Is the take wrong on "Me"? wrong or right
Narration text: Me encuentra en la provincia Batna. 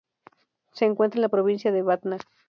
wrong